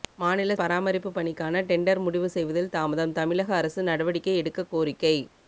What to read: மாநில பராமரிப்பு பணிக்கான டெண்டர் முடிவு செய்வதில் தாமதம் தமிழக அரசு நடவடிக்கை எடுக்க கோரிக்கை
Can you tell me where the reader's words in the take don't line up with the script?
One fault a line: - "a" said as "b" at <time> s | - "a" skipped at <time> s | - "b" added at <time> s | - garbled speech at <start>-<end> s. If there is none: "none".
none